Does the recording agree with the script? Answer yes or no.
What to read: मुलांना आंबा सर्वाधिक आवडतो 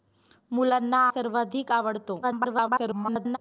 no